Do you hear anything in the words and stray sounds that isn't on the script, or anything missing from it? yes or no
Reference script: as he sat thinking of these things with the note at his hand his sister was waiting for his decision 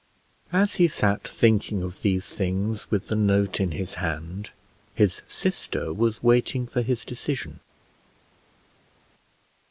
yes